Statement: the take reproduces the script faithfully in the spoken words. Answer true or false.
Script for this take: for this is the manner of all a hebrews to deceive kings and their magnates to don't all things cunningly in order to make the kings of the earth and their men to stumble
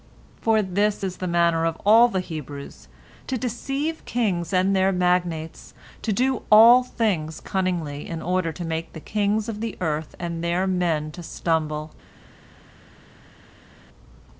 false